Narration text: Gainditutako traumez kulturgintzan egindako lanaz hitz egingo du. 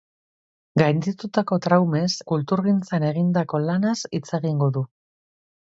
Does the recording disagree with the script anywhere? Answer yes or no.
no